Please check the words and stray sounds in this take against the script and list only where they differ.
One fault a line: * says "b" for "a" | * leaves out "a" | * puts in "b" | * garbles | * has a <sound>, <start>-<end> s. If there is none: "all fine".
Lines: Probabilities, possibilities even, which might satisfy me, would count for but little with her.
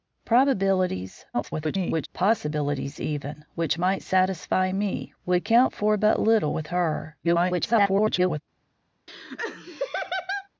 * garbles
* garbles
* has a laugh, 9.1-10.5 s